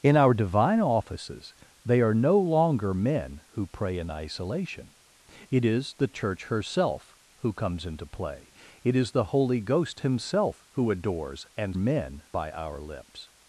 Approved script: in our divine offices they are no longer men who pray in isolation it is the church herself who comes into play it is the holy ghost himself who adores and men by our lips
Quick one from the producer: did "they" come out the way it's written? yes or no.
yes